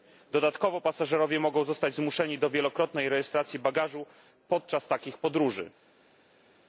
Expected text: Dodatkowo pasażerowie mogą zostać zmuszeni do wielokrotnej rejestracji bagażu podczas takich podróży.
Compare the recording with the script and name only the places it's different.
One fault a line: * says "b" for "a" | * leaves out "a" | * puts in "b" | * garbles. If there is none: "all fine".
all fine